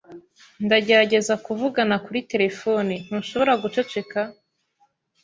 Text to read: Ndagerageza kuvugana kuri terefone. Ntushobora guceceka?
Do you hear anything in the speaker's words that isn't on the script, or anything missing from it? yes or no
no